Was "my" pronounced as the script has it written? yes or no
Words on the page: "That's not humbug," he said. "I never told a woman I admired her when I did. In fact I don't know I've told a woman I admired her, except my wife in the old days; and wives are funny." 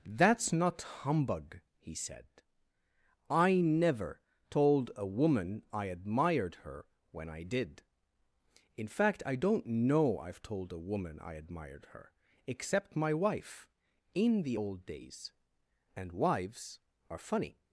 yes